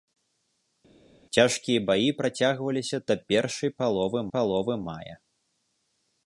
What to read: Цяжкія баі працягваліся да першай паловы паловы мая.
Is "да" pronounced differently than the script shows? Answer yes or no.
no